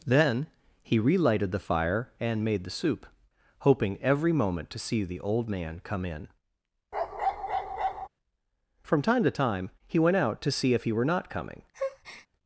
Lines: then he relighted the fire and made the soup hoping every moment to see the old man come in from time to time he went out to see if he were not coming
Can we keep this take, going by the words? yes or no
yes